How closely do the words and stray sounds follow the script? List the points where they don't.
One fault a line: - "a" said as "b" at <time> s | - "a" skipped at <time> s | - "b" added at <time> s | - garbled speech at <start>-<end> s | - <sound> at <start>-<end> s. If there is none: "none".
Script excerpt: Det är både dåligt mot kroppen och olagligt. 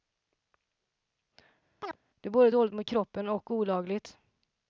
- chirp at 1.8-2.0 s